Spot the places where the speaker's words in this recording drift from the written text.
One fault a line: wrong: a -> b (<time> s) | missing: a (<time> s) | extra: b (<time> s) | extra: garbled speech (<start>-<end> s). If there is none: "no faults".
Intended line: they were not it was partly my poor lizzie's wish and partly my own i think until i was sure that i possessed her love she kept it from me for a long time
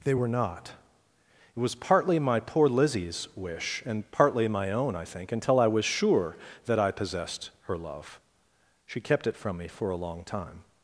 no faults